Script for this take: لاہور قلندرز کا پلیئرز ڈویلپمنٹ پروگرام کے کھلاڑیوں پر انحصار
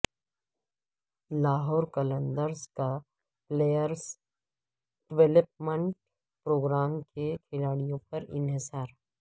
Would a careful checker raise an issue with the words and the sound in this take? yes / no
no